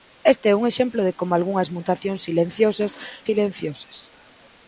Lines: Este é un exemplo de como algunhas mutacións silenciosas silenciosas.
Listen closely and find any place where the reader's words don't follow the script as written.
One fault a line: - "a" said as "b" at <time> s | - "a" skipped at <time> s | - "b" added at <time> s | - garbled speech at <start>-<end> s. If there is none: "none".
none